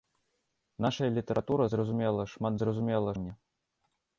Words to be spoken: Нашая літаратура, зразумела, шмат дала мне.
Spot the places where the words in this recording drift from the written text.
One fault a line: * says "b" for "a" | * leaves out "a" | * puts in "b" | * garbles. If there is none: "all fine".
* says "зразумела" for "дала"